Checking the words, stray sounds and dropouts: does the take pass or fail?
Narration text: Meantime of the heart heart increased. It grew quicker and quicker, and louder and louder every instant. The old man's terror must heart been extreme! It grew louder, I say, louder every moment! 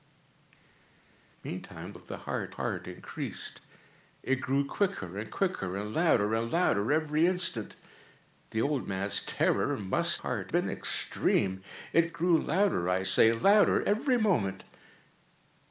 pass